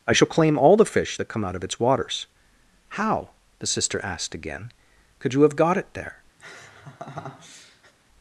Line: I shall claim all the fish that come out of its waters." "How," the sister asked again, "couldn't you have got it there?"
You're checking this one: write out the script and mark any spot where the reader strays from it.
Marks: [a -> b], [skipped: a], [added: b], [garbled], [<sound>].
I shall claim all the fish that come out of its waters." "How," the sister asked again, ["couldn't -> could] you have got it there?" [laugh]